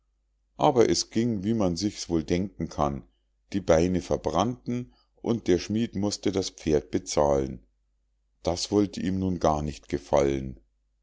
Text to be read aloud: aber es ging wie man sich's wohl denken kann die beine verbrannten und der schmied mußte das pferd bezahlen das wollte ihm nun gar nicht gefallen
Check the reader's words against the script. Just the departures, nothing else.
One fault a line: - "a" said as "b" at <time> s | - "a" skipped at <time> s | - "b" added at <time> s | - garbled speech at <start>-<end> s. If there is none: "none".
none